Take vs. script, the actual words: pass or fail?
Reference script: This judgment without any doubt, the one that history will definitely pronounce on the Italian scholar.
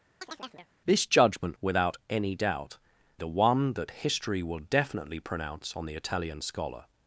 pass